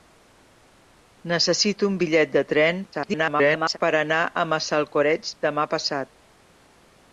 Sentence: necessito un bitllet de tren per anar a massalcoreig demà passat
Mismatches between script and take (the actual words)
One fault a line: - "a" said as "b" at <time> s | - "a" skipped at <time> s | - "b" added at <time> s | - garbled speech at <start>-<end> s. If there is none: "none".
- garbled speech at 2.9-3.8 s